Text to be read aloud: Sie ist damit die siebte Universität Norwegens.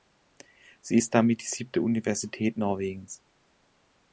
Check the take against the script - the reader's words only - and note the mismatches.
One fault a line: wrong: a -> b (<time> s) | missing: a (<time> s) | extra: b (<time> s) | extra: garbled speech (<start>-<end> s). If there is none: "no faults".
no faults